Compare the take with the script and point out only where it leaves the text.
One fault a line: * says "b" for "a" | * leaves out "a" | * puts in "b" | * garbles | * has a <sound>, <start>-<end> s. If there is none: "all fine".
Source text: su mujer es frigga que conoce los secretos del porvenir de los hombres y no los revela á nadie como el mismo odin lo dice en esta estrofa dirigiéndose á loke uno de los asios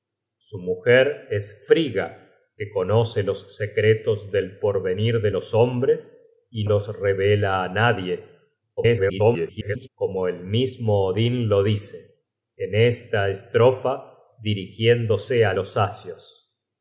* leaves out "no"
* garbles
* leaves out "loke uno de"